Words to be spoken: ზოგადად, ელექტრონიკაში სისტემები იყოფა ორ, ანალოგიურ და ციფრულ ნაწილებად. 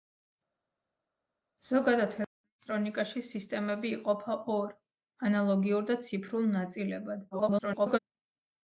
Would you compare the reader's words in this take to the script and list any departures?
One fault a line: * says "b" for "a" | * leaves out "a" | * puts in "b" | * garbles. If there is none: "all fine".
* garbles